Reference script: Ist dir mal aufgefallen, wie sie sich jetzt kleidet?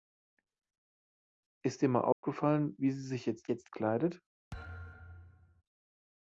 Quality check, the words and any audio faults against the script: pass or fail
fail